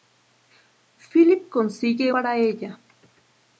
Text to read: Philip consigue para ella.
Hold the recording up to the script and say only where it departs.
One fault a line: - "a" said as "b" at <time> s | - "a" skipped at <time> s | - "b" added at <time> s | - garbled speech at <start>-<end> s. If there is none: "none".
none